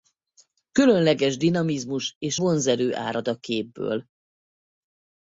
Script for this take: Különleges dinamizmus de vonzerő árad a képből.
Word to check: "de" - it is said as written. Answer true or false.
false